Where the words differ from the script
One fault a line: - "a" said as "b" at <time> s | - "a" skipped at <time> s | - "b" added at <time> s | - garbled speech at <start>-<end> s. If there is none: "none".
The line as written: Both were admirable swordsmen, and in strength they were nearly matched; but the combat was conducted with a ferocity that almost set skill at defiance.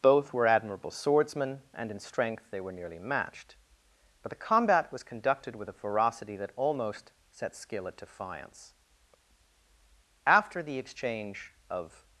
- "After the exchange of" added at 10.2 s